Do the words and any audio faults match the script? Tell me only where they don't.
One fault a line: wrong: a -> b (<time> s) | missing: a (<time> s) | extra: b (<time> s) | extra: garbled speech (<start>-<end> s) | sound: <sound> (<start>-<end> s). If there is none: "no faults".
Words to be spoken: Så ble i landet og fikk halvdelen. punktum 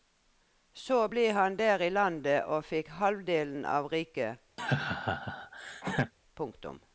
extra: han der (1.3 s)
extra: av riket (3.6 s)
sound: laugh (4.6-6.1 s)